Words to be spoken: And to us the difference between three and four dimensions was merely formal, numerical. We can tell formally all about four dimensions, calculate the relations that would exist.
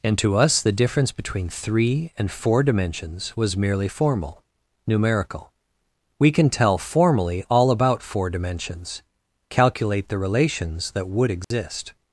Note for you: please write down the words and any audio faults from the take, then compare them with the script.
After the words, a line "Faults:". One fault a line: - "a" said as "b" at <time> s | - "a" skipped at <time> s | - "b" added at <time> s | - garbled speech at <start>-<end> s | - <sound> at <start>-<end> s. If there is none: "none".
And to us the difference between three and four dimensions was merely formal, numerical. We can tell formally all about four dimensions, calculate the relations that would exist.
Faults:
- dropout at 11.4-11.5 s